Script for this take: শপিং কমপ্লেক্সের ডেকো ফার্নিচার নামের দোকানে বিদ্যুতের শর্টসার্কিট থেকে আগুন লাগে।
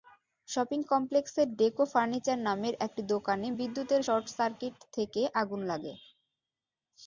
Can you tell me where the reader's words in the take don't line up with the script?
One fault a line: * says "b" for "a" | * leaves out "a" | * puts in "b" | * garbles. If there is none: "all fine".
* puts in "একটি"